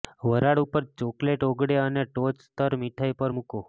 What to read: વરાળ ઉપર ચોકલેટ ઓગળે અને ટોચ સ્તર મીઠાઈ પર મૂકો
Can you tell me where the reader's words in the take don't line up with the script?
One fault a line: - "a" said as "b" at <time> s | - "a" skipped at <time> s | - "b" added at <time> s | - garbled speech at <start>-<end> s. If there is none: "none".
none